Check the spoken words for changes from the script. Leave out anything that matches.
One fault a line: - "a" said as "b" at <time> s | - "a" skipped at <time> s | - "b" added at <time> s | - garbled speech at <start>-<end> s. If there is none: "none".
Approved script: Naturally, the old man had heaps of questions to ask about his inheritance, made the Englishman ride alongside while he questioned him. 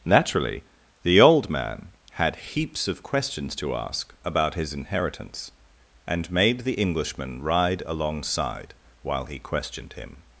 - "and" added at 6.1 s